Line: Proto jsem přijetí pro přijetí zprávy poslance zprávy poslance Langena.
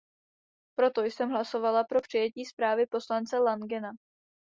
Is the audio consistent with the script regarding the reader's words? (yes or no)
no